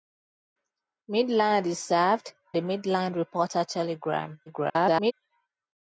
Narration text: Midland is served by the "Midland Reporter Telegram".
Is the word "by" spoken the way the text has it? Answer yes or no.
no